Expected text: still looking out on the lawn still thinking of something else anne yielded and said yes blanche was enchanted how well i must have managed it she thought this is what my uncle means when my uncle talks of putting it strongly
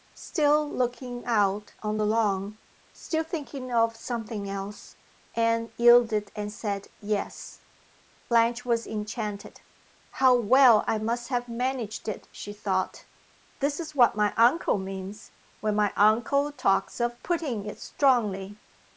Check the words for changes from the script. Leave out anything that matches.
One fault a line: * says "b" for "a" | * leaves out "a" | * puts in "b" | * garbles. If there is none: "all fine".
all fine